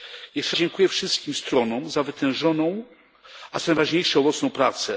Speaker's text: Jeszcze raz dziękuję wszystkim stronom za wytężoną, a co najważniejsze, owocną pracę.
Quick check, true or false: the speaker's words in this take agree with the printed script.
false